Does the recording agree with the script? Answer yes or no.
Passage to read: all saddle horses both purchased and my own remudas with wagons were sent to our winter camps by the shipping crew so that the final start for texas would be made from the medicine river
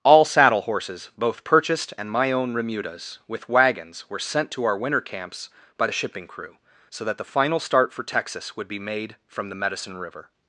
yes